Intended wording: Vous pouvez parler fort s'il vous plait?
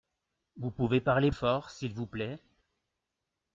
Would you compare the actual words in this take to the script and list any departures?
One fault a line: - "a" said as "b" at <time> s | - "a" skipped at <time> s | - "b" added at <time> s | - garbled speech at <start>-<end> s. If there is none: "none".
none